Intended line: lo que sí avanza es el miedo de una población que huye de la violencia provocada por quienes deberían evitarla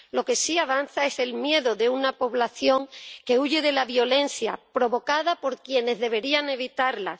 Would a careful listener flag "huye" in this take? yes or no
no